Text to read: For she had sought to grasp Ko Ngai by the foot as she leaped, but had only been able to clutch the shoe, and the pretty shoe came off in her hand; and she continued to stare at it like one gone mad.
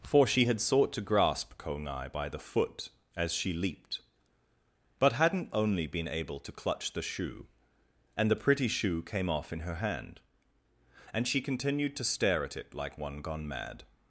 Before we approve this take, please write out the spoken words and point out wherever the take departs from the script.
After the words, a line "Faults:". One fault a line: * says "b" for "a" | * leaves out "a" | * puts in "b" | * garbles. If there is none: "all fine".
For she had sought to grasp Ko Ngai by the foot as she leaped, but hadn't only been able to clutch the shoe, and the pretty shoe came off in her hand; and she continued to stare at it like one gone mad.
Faults:
* says "hadn't" for "had"